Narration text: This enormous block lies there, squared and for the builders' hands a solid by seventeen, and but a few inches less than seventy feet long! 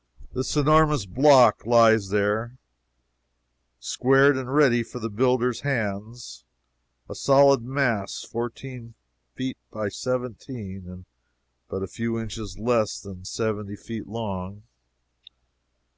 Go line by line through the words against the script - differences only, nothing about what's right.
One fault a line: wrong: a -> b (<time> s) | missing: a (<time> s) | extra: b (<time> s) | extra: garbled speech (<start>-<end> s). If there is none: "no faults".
extra: ready (4.5 s)
extra: mass fourteen feet (7.6 s)